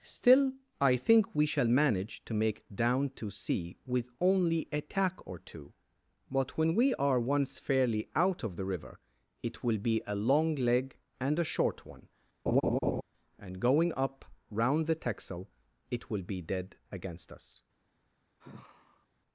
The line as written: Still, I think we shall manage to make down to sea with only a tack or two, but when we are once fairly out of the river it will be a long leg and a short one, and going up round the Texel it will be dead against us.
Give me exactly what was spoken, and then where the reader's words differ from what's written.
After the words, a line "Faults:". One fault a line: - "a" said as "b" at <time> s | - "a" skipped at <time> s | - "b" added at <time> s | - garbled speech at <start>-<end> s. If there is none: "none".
Still, I think we shall manage to make down to sea with only a tack or two, but when we are once fairly out of the river it will be a long leg and a short one, and going up round the Texel it will be dead against us.
Faults:
none